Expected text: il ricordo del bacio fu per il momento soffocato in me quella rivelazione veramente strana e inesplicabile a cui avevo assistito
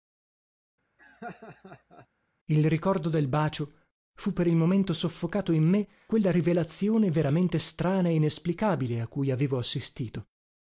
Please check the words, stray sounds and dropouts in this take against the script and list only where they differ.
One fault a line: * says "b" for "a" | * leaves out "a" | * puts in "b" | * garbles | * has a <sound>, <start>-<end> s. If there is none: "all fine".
* has a laugh, 1.0-2.1 s